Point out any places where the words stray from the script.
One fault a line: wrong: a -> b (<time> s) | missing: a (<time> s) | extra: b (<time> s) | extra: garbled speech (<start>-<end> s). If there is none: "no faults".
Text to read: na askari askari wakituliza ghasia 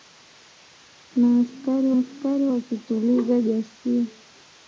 no faults